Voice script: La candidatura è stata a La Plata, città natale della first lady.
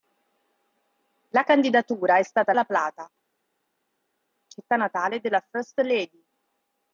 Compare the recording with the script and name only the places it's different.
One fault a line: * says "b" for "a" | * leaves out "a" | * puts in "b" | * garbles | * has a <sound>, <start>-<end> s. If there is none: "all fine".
all fine